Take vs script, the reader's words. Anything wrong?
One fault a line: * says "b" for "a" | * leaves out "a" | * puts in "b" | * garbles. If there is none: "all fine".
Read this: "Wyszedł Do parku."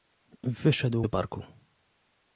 all fine